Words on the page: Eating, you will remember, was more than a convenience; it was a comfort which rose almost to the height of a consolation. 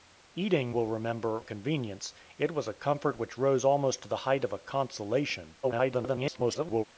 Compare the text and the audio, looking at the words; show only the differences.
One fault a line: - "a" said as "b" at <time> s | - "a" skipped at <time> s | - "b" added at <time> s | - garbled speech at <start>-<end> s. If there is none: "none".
- "you" skipped at 0.7 s
- "was more than" skipped at 1.4 s
- garbled speech at 5.6-6.8 s